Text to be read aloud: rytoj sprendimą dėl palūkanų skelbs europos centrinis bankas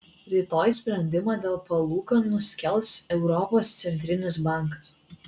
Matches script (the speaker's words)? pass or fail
pass